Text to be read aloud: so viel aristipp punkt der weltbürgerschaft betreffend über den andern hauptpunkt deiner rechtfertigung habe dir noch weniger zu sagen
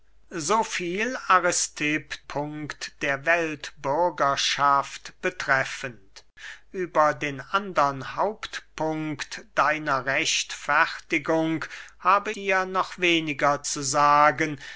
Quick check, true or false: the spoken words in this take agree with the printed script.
true